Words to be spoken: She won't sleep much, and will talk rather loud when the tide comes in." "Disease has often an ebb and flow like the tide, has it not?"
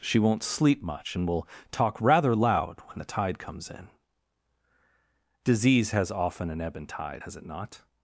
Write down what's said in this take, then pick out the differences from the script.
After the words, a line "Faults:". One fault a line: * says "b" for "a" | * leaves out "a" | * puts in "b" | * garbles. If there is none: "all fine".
She won't sleep much, and will talk rather loud when the tide comes in." "Disease has often an ebb and tide, has it not?"
Faults:
* leaves out "flow like the"